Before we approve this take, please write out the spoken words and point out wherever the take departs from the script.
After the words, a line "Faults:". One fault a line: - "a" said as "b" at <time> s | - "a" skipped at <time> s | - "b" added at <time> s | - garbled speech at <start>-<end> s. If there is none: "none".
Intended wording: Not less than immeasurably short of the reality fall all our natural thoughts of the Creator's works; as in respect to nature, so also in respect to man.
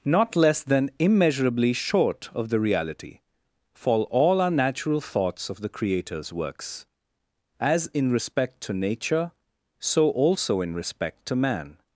Not less than immeasurably short of the reality fall all our natural thoughts of the Creator's works; as in respect to nature, so also in respect to man.
Faults:
none